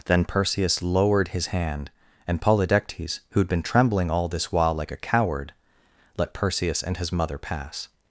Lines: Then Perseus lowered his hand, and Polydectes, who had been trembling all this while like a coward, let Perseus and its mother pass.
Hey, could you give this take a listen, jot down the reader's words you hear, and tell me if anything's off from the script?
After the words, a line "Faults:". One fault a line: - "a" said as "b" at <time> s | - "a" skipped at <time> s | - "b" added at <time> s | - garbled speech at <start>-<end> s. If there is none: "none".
Then Perseus lowered his hand, and Polydectes, who had been trembling all this while like a coward, let Perseus and his mother pass.
Faults:
- "its" said as "his" at 7.0 s